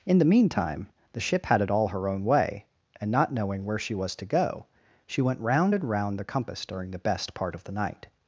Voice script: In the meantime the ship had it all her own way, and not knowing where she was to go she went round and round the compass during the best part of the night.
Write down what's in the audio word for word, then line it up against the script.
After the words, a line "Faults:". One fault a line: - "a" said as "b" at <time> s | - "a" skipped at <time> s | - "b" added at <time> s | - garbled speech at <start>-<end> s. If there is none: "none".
In the meantime the ship had it all her own way, and not knowing where she was to go she went round and round the compass during the best part of the night.
Faults:
none